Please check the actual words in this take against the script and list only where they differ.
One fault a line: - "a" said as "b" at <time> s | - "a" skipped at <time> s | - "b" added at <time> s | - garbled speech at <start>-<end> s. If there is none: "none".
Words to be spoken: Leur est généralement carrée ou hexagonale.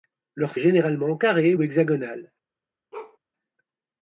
none